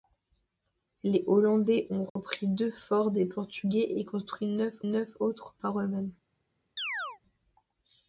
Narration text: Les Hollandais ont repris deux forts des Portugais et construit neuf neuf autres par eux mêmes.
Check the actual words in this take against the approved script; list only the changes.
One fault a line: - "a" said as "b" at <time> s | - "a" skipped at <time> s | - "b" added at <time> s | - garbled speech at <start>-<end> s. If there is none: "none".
none